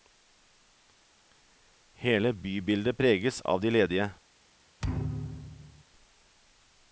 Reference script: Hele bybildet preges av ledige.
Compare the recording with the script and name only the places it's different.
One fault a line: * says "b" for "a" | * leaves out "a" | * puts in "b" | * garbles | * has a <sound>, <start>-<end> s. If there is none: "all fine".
* puts in "de"
* has a thud, 4.8-5.8 s